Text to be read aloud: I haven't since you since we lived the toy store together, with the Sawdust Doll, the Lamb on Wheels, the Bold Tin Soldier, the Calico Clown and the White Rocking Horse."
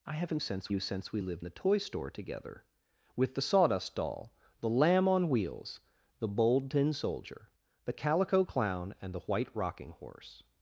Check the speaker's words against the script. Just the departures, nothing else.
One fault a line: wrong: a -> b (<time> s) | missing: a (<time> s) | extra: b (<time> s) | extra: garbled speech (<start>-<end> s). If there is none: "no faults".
no faults